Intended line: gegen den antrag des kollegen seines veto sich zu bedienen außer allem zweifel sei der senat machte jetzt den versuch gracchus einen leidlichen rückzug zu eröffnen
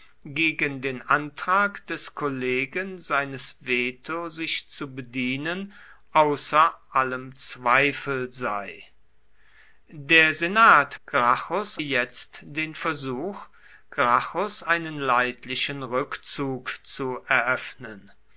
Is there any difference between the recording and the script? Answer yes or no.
yes